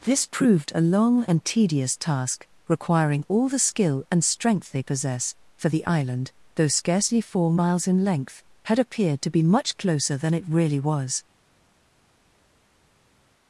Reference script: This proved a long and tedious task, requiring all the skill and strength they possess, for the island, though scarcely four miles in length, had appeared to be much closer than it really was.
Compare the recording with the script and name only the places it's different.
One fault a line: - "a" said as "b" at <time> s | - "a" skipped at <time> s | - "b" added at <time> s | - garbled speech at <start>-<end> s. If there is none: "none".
none